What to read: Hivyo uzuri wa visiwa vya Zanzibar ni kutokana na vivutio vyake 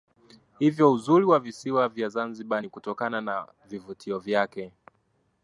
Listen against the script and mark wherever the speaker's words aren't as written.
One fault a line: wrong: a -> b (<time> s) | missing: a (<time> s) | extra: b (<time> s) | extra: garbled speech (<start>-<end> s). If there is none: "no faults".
no faults